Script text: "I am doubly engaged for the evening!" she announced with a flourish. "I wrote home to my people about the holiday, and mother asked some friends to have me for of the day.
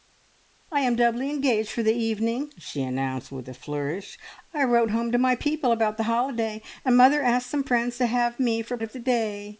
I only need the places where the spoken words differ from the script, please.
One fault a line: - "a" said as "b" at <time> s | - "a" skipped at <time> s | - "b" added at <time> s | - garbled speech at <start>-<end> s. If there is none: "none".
none